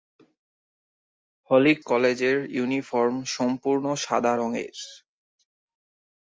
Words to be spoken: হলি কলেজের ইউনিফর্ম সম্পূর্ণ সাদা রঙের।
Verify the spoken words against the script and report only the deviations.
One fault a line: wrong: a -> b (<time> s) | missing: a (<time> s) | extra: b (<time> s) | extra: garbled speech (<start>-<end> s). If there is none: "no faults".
no faults